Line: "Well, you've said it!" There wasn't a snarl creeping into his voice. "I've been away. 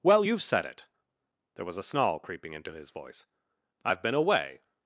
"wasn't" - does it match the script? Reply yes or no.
no